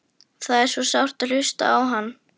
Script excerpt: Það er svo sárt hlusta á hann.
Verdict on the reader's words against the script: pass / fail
pass